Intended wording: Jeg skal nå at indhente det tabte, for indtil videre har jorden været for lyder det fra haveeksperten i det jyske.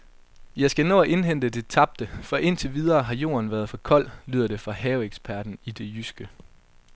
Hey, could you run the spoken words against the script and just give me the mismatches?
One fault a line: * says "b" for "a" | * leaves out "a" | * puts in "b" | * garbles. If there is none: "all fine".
* puts in "kold"